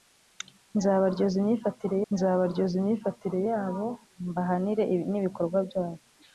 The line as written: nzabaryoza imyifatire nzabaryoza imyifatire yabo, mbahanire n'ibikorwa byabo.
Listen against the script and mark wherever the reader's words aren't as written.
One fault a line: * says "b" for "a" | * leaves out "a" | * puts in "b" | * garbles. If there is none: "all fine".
all fine